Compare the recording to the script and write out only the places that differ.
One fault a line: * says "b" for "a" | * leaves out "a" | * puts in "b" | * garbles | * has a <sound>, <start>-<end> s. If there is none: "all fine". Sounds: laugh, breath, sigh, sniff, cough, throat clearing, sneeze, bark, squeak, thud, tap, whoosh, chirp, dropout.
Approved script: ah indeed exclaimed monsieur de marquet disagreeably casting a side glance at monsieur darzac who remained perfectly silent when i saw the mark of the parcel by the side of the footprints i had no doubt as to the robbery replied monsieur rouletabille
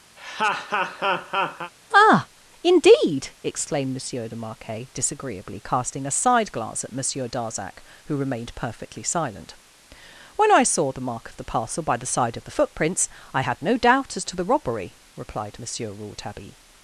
* has a laugh, 0.2-1.7 s